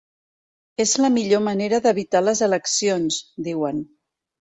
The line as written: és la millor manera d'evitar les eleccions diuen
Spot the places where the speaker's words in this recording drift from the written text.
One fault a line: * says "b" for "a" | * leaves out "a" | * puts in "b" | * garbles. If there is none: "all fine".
all fine